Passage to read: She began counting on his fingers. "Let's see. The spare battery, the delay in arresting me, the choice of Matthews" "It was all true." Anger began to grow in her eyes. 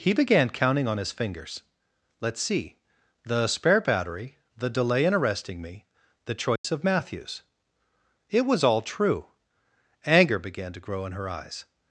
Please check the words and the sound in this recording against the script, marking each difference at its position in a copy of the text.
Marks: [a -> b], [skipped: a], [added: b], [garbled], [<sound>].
[She -> He] began counting on his fingers. "Let's see. The spare battery, the delay in arresting me, the choice [dropout] of Matthews" "It was all true." Anger began to grow in her eyes.